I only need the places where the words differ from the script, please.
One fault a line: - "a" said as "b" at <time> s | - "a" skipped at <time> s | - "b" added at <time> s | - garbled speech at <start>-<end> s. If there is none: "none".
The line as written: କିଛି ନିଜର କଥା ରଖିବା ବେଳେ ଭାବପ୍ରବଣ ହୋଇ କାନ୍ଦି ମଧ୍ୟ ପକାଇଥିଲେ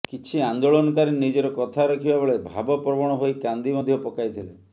- "ଆନ୍ଦୋଳନକାରୀ" added at 0.4 s